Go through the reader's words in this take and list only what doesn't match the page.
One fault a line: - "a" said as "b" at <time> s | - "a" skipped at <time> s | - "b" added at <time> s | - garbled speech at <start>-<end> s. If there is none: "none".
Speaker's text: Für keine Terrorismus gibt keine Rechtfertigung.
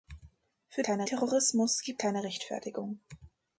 none